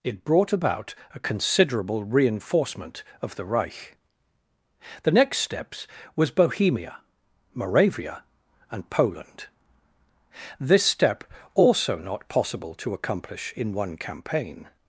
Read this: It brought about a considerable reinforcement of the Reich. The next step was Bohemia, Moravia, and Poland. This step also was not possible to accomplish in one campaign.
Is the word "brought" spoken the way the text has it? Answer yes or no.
yes